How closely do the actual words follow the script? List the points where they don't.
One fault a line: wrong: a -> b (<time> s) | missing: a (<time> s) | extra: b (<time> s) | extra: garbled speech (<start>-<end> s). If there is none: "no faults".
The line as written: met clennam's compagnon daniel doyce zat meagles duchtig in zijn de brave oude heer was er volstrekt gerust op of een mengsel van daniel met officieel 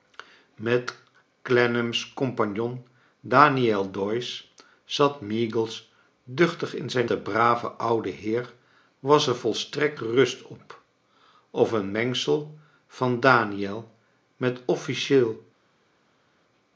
no faults